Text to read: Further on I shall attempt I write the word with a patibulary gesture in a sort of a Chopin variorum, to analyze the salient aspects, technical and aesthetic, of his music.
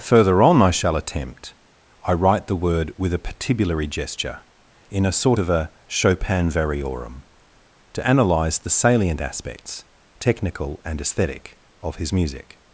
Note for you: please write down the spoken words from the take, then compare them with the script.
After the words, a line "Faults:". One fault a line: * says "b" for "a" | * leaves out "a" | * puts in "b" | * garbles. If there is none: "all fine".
Further on I shall attempt I write the word with a patibulary gesture in a sort of a Chopin variorum, to analyze the salient aspects, technical and aesthetic, of his music.
Faults:
all fine